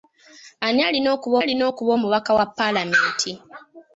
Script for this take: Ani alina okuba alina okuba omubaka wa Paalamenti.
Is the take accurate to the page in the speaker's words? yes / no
yes